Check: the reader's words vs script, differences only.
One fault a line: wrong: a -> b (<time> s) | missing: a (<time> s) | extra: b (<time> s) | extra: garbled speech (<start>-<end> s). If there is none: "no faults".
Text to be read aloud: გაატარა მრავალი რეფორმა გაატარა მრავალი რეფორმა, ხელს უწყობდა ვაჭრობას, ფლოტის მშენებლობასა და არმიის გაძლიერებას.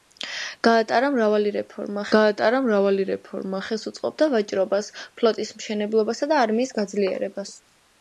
no faults